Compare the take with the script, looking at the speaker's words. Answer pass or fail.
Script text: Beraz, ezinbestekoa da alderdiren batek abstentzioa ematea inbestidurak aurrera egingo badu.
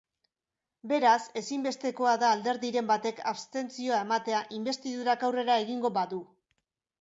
pass